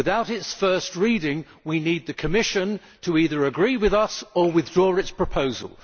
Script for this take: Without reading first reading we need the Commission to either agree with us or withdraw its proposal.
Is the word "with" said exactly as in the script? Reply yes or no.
yes